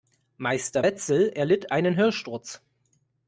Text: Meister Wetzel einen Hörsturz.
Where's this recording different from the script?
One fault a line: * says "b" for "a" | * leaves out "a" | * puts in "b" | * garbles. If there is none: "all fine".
* puts in "erlitt"